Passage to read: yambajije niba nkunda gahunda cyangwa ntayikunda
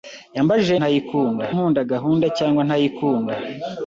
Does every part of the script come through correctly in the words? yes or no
no